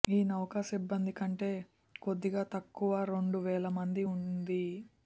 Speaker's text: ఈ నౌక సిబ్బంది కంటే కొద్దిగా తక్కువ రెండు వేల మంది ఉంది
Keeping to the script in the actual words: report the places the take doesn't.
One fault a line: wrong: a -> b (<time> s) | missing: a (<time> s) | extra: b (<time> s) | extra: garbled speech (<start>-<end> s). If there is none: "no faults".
no faults